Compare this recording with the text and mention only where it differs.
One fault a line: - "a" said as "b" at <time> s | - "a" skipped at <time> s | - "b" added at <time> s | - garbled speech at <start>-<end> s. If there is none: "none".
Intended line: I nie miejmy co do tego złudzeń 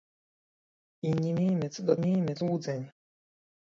- "tego" said as "miejmy" at 2.0 s